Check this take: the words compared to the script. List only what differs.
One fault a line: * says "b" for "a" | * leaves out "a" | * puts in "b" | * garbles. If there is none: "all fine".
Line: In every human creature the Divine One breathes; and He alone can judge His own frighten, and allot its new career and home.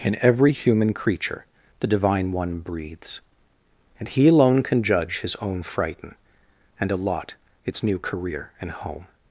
all fine